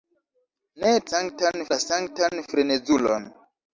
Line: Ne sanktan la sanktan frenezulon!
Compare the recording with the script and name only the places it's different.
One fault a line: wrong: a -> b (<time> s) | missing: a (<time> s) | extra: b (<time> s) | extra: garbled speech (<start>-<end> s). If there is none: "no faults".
no faults